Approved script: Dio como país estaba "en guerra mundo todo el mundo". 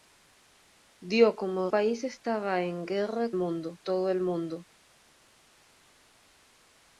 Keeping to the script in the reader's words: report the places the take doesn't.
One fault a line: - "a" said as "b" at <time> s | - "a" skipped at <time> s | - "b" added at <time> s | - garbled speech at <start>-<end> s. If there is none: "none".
none